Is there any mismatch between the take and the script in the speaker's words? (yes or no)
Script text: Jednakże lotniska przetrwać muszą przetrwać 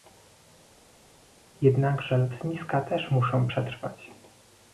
yes